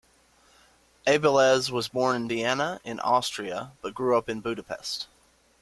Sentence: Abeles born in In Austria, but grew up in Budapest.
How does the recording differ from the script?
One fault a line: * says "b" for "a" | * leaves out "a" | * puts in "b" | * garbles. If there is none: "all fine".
* puts in "was"
* puts in "Vienna"